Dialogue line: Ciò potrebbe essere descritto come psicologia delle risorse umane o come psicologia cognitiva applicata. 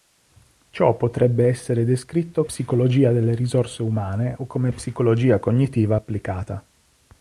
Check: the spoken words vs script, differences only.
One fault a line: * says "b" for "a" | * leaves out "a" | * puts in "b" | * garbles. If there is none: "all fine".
* leaves out "come"